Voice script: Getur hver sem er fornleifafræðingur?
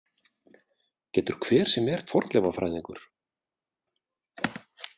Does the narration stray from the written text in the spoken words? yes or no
no